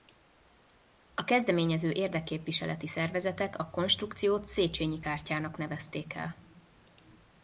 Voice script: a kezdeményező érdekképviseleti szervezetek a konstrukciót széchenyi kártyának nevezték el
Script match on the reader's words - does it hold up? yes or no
yes